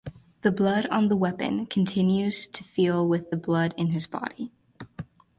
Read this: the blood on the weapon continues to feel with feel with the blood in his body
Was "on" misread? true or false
false